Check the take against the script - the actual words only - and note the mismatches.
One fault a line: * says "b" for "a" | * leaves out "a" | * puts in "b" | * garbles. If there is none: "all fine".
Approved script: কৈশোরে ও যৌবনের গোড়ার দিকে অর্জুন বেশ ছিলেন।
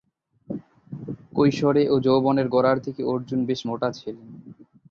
* puts in "মোটা"